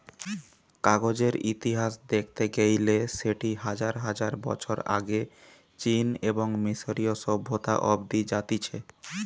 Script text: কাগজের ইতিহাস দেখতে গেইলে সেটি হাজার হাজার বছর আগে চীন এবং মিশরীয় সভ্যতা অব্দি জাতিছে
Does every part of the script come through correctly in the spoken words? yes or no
yes